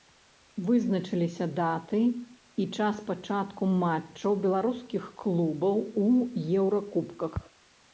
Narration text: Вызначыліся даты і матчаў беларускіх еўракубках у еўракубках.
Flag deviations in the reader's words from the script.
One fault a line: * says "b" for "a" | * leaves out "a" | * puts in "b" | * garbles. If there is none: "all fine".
* puts in "час пачатку"
* says "клубаў" for "еўракубках"